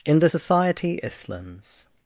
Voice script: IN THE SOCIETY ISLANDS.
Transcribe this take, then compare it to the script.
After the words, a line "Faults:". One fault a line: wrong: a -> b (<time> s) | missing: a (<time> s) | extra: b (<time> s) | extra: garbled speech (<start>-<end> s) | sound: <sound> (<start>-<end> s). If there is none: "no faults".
IN THE SOCIETY ISLANDS.
Faults:
no faults